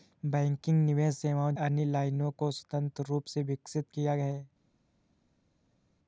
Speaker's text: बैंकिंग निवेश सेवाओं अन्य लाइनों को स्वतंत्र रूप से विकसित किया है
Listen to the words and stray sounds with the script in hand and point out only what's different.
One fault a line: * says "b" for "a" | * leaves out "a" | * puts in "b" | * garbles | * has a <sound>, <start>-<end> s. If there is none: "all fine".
all fine